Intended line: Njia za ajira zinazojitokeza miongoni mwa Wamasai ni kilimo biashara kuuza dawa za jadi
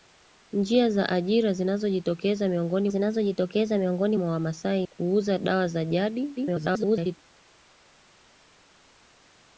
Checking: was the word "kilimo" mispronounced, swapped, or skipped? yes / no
yes